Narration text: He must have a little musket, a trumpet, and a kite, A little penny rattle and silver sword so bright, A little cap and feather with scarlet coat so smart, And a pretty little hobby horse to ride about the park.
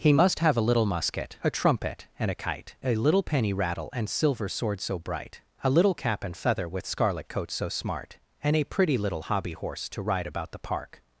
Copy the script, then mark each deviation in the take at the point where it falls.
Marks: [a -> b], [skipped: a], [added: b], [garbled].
He must have a little musket, a trumpet, and a kite, A little penny rattle and silver sword so bright, A little cap and feather with scarlet coat so smart, And a pretty little hobby horse to ride about the park.